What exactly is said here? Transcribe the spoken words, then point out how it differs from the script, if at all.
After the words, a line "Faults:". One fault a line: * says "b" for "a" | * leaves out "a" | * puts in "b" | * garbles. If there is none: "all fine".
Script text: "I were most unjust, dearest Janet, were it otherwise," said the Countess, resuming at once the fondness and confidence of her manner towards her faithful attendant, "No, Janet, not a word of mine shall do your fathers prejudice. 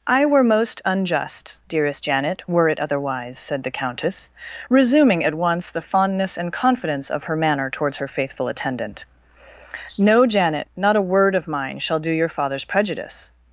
"I were most unjust, dearest Janet, were it otherwise," said the Countess, resuming at once the fondness and confidence of her manner towards her faithful attendant, "No, Janet, not a word of mine shall do your fathers prejudice.
Faults:
all fine